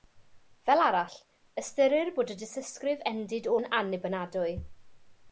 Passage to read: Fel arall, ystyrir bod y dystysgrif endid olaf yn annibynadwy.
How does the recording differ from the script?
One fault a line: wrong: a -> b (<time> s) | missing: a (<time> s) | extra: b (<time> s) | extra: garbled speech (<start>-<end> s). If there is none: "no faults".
missing: olaf (3.5 s)